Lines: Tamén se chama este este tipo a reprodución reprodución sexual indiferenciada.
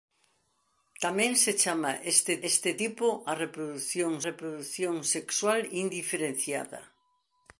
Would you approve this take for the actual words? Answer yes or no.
yes